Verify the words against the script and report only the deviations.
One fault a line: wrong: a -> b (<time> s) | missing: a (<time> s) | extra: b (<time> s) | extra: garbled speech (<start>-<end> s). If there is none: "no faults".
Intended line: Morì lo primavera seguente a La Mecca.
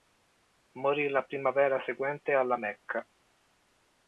wrong: lo -> la (1.1 s)